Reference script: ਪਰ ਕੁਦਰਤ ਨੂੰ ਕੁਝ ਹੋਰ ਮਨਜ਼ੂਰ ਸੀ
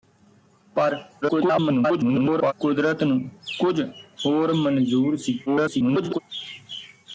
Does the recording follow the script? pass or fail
fail